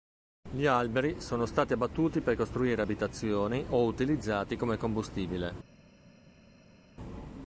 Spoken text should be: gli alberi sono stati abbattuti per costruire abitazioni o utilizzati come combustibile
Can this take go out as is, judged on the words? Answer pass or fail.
pass